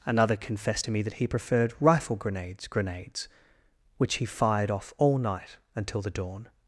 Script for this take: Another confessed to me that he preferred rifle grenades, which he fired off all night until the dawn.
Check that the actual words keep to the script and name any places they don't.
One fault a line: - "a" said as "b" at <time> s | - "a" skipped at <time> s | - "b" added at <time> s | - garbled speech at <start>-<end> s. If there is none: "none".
- "grenades" added at 2.7 s